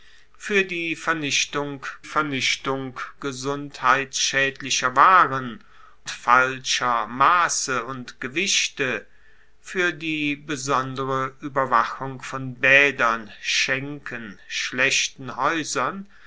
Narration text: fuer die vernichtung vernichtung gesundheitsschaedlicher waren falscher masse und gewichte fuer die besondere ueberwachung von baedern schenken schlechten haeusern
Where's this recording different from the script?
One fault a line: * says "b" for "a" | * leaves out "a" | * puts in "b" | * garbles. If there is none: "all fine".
all fine